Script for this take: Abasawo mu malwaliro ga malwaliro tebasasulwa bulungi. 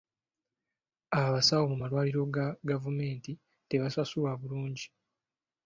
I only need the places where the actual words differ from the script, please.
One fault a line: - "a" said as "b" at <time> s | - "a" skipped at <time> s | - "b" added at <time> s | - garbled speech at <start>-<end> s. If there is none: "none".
- "malwaliro" said as "gavumenti" at 2.7 s